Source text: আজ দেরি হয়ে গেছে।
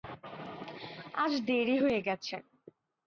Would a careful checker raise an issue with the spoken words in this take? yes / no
no